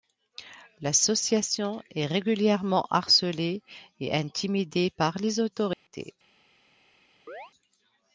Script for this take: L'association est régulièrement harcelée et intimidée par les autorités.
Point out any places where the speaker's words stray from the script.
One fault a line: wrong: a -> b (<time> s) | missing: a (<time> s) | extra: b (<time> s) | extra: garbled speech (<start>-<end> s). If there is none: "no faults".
no faults